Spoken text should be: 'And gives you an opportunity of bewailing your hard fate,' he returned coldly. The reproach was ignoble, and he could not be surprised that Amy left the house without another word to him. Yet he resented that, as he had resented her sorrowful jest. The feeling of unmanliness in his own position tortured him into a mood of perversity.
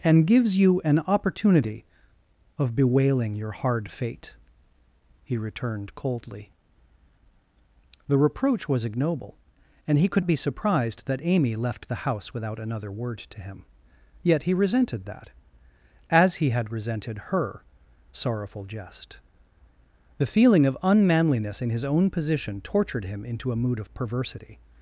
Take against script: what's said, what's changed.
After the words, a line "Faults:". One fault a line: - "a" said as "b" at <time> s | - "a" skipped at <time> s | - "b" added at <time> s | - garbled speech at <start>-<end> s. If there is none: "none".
'And gives you an opportunity of bewailing your hard fate,' he returned coldly. The reproach was ignoble, and he could be surprised that Amy left the house without another word to him. Yet he resented that, as he had resented her sorrowful jest. The feeling of unmanliness in his own position tortured him into a mood of perversity.
Faults:
- "not" skipped at 10.2 s